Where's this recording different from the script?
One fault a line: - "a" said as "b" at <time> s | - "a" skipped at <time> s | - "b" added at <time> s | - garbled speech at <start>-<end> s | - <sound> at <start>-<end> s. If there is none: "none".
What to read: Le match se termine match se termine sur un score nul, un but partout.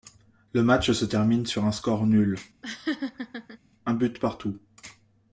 - "match se termine" skipped at 1.4 s
- laugh at 2.6-3.6 s